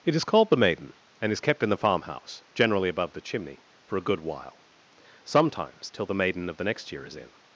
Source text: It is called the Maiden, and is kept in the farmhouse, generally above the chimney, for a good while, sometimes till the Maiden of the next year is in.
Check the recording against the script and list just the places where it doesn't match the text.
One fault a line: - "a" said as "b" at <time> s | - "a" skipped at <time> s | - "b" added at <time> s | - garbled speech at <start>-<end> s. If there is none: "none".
none